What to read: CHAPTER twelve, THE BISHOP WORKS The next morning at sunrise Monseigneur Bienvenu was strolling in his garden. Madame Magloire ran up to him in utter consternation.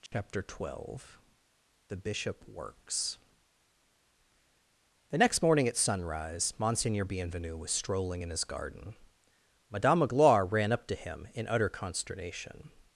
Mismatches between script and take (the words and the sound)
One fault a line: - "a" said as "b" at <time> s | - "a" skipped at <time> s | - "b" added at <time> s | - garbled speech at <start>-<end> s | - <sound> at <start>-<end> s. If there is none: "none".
- dropout at 0.1-0.1 s